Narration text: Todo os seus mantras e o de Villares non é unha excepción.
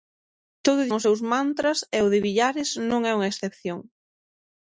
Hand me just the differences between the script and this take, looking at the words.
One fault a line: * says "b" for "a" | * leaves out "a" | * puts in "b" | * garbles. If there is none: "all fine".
all fine